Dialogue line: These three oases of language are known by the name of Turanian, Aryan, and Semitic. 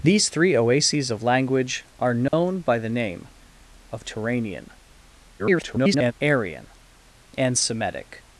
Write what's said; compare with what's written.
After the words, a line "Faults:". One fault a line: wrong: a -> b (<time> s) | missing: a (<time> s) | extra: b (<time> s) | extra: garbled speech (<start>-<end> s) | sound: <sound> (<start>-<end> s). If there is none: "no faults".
These three oases of language are known by the name of Turanian, [garbled] Aryan, and Semitic.
Faults:
sound: dropout (2.3-2.3 s)
extra: garbled speech (5.4-6.1 s)